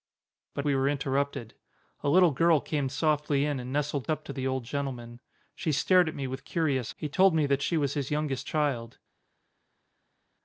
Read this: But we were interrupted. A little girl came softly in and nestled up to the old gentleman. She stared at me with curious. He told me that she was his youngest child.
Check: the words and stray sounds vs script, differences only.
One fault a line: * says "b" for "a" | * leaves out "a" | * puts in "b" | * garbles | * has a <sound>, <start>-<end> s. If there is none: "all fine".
all fine